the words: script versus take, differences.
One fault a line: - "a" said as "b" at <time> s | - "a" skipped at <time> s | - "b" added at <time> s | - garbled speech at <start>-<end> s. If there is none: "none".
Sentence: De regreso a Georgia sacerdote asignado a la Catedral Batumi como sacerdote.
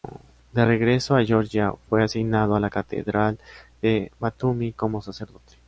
- "sacerdote" said as "fue" at 1.9 s
- "de" added at 3.8 s